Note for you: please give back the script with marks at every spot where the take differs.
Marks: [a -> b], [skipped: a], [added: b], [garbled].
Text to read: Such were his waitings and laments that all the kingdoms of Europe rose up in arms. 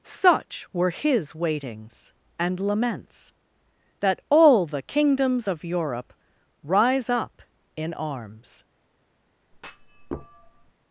Such were his waitings and laments that all the kingdoms of Europe [rose -> rise] up in arms.